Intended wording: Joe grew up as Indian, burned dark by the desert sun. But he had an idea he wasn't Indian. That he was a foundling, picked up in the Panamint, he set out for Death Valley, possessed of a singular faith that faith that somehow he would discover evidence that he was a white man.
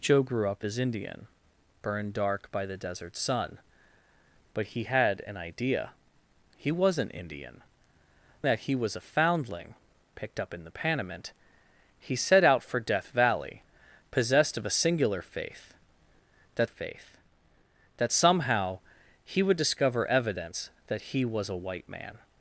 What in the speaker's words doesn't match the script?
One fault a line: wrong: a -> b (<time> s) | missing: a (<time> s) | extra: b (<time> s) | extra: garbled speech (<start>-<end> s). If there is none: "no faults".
no faults